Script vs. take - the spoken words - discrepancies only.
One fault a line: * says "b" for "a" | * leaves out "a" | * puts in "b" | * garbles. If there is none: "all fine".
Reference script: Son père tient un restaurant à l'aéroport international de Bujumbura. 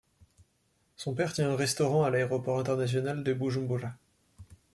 all fine